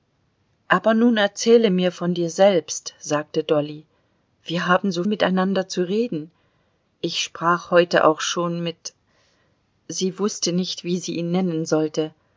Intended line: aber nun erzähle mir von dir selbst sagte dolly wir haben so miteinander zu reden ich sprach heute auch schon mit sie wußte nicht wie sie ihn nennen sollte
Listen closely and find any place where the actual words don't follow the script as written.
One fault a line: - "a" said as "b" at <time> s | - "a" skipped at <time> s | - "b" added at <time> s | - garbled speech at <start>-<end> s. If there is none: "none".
none